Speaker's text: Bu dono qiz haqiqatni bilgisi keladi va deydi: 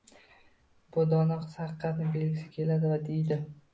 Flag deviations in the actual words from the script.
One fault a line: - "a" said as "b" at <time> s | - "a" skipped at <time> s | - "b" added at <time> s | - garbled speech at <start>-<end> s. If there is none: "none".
none